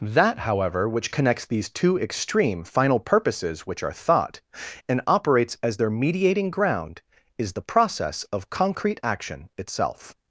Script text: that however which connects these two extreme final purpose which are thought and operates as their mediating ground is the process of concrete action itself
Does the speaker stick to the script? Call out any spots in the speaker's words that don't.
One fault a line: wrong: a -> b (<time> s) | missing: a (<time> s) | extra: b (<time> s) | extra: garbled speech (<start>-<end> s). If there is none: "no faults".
wrong: purpose -> purposes (3.0 s)